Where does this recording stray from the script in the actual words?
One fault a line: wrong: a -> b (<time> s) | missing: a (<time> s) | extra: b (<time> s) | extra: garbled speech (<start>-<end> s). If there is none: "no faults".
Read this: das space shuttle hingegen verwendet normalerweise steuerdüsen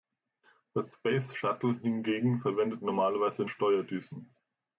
no faults